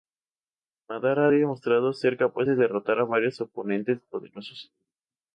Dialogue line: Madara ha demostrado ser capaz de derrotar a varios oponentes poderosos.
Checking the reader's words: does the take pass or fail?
pass